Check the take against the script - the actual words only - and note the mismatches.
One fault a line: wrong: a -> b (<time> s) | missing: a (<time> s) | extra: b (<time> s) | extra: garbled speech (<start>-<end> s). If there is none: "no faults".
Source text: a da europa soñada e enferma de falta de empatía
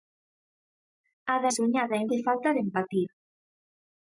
missing: europa (1.5 s)
missing: enferma (2.0 s)